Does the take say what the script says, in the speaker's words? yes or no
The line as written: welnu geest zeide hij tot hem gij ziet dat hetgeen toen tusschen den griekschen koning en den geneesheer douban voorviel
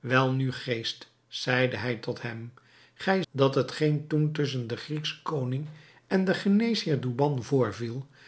no